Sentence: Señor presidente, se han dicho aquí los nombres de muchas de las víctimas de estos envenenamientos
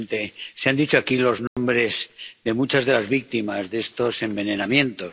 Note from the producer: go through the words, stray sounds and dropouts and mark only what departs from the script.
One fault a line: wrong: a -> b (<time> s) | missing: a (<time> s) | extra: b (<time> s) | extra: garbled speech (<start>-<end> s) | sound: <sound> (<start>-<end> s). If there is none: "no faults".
sound: dropout (1.5-1.6 s)